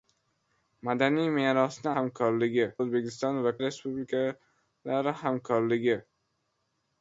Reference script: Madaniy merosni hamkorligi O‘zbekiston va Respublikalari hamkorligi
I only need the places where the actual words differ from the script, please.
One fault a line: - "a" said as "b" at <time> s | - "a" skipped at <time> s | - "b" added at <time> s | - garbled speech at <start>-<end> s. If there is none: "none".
none